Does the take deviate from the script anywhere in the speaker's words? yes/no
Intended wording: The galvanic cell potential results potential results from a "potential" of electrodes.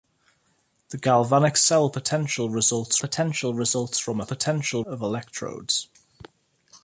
no